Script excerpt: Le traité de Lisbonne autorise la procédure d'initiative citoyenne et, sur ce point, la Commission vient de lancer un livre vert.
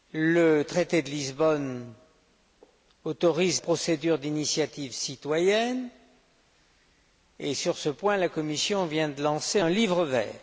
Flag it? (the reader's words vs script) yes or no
yes